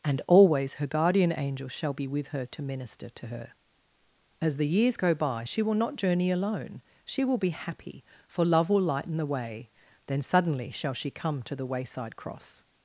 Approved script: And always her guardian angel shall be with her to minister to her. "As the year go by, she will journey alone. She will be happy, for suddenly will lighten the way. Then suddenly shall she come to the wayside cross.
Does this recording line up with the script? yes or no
no